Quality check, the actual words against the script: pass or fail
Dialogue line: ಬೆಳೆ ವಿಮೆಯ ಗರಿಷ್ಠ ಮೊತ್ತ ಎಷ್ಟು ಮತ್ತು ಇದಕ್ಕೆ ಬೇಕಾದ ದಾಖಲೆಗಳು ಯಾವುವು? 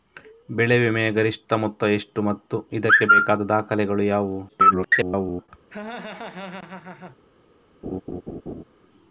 fail